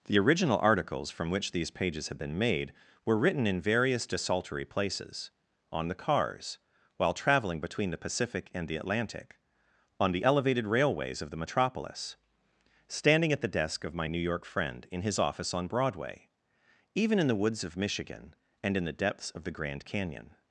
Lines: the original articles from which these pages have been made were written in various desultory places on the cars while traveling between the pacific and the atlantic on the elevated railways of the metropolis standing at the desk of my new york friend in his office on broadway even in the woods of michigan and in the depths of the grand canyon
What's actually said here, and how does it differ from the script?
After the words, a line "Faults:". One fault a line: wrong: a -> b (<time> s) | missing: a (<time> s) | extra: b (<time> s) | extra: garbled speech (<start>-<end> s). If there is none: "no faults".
the original articles from which these pages have been made were written in various desultory places on the cars while traveling between the pacific and the atlantic on the elevated railways of the metropolis standing at the desk of my new york friend in his office on broadway even in the woods of michigan and in the depths of the grand canyon
Faults:
no faults